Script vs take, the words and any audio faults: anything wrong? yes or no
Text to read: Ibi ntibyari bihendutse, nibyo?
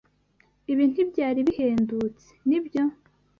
no